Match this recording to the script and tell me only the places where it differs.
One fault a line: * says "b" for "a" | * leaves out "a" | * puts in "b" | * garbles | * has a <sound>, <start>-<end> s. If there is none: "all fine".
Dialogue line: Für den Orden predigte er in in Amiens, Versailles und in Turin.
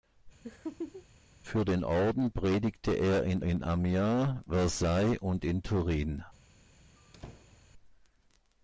* has a laugh, 0.4-1.1 s
* has a squeak, 7.0-7.7 s